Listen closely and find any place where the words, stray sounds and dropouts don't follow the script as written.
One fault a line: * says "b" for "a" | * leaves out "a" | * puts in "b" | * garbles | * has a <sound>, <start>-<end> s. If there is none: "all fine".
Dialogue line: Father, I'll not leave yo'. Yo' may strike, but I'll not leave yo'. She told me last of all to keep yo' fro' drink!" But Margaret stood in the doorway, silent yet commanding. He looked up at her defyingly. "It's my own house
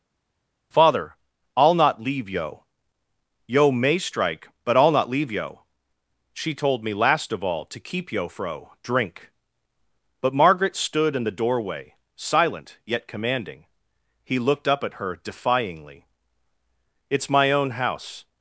all fine